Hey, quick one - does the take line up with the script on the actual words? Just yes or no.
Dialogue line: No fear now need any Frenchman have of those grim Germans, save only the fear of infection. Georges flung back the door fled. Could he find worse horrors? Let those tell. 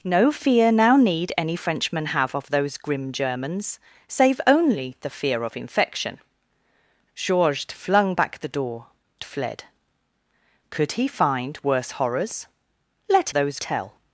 yes